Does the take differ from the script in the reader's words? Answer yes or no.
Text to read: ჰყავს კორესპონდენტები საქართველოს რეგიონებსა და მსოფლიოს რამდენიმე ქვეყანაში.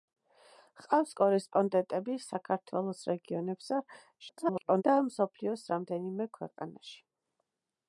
yes